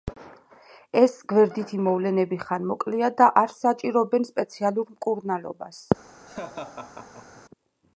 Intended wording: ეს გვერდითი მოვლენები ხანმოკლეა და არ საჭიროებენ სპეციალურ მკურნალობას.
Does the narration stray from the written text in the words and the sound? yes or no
yes